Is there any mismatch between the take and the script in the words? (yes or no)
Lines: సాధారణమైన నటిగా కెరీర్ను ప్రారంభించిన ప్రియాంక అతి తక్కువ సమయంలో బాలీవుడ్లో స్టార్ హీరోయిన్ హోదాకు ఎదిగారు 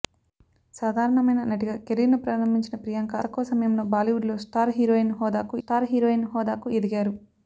yes